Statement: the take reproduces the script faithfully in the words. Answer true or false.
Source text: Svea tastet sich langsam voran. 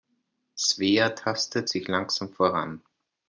true